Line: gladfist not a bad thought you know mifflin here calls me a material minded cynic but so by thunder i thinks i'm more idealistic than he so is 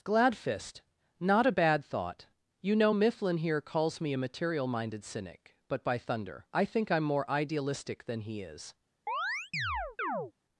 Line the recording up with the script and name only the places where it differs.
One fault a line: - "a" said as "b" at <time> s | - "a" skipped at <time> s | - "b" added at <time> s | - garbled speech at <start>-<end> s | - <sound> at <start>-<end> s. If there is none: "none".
- "so" skipped at 5.8 s
- "thinks" said as "think" at 6.6 s
- "so" skipped at 8.4 s
- chirp at 9.1-10.3 s